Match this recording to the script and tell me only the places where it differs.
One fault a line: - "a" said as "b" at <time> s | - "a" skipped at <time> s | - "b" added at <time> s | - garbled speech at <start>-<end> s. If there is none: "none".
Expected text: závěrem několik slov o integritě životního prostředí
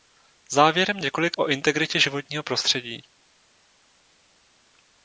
- "slov" skipped at 1.4 s